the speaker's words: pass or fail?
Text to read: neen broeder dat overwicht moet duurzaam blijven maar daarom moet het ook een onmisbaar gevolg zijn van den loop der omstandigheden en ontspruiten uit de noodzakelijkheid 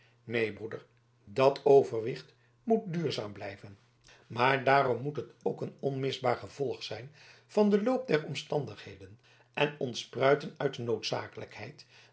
pass